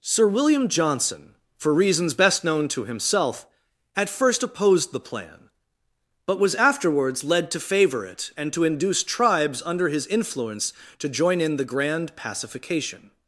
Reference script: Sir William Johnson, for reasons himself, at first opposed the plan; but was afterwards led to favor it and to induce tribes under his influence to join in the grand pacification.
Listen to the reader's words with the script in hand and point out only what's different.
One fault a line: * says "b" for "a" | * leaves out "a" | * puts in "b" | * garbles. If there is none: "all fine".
* puts in "best known to"